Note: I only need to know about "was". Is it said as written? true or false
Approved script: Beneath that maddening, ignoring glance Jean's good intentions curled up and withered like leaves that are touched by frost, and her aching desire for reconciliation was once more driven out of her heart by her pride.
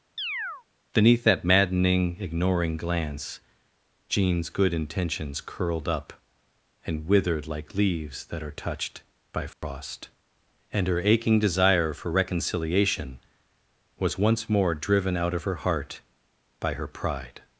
true